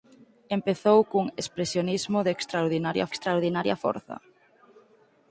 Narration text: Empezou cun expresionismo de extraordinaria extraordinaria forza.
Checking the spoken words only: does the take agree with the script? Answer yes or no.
yes